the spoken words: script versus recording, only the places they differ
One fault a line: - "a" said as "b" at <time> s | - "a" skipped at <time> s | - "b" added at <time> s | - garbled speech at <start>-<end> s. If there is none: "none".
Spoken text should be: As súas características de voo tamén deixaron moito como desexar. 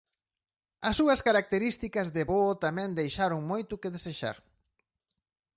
- "como" said as "que" at 3.8 s